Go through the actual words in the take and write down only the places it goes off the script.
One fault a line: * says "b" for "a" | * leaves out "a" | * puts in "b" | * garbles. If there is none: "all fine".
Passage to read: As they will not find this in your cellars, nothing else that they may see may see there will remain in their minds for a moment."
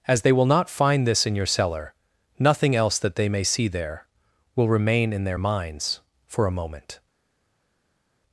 * says "cellar" for "cellars"
* leaves out "may see"